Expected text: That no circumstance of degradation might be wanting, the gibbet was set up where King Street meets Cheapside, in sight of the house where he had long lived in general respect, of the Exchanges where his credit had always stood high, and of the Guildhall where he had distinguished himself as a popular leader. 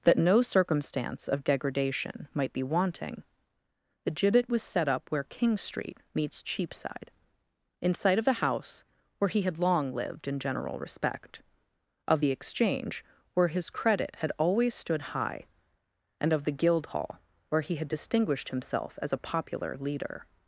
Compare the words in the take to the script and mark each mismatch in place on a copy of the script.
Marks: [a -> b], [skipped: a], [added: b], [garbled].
That no circumstance of degradation might be wanting, the gibbet was set up where King Street meets Cheapside, in sight of the house where he had long lived in general respect, of the [Exchanges -> Exchange] where his credit had always stood high, and of the Guildhall where he had distinguished himself as a popular leader.